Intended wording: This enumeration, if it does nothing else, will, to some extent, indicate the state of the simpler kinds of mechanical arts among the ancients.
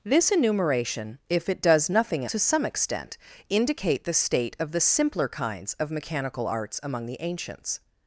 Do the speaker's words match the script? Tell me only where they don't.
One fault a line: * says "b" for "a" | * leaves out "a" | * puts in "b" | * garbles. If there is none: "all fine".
* leaves out "else will"